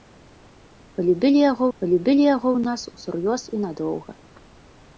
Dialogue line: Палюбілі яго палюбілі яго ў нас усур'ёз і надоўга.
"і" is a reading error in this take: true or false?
false